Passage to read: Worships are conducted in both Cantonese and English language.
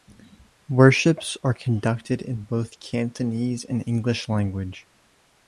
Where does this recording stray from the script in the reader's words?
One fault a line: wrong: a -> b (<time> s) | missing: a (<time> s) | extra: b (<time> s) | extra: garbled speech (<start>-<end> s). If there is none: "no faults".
no faults